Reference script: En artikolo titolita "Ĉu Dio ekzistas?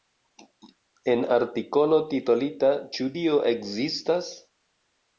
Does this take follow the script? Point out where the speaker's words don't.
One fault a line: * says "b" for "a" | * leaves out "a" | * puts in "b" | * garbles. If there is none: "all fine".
all fine